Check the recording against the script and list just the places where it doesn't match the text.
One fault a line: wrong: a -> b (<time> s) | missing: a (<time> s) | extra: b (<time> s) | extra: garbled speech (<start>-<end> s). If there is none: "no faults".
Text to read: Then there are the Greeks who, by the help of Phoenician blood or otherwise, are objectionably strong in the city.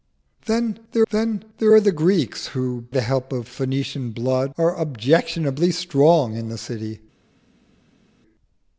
extra: then there (1.1 s)
missing: by (2.9 s)
missing: or otherwise (4.5 s)